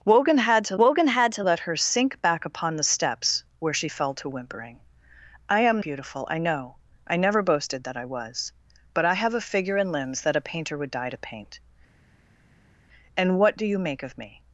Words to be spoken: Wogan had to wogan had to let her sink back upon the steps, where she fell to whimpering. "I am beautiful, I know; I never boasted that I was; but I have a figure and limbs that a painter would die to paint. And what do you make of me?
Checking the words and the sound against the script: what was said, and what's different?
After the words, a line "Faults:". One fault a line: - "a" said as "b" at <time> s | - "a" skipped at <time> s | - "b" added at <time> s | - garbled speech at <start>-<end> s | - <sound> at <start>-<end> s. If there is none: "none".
Wogan had to wogan had to let her sink back upon the steps, where she fell to whimpering. "I am beautiful, I know; I never boasted that I was; but I have a figure and limbs that a painter would die to paint. And what do you make of me?
Faults:
none